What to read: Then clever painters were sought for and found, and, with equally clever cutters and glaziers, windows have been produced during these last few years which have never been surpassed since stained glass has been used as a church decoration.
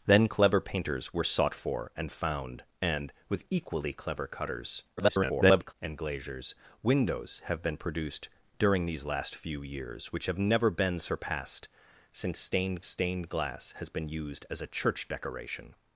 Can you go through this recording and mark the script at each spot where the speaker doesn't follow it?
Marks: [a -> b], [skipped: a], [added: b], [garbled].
Then clever painters were sought for and found, and, with equally clever cutters [garbled] and glaziers, windows have been produced during these last few years which have never been surpassed since stained [added: stained] glass has been used as a church decoration.